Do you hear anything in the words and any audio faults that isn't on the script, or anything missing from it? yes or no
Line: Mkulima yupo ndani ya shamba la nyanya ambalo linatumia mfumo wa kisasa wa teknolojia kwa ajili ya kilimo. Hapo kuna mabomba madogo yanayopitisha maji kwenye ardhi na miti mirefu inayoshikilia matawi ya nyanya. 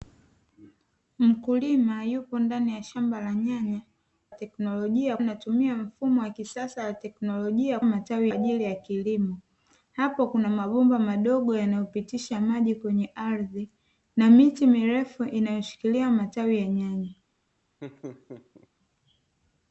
yes